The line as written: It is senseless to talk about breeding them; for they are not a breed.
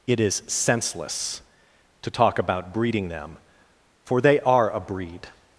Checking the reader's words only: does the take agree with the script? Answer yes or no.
no